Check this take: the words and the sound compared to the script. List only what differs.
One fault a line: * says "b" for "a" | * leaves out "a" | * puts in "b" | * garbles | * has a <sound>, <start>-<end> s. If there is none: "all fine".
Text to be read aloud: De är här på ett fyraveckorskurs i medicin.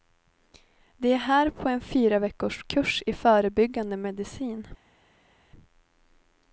* says "en" for "ett"
* puts in "förebyggande"